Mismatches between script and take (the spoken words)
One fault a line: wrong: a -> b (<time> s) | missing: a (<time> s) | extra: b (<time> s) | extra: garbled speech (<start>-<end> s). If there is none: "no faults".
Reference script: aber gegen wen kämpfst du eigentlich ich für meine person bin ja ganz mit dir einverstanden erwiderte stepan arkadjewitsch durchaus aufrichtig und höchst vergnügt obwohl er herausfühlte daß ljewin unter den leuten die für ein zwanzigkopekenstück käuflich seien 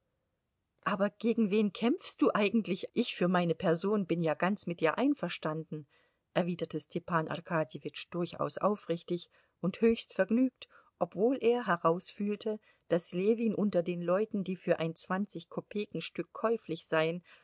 no faults